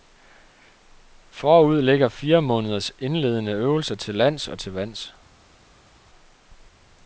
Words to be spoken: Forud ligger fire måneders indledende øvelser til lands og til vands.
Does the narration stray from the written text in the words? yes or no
no